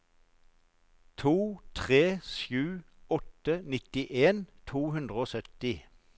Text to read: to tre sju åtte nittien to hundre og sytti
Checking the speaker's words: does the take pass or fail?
pass